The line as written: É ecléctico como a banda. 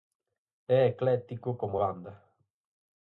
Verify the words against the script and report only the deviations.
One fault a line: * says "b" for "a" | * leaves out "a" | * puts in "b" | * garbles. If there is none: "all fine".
all fine